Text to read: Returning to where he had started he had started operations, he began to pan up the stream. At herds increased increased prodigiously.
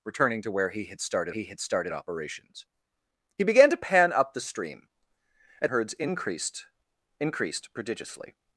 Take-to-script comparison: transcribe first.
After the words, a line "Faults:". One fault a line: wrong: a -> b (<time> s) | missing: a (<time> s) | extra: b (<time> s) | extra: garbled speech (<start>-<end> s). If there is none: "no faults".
Returning to where he had started he had started operations, he began to pan up the stream. At herds increased increased prodigiously.
Faults:
no faults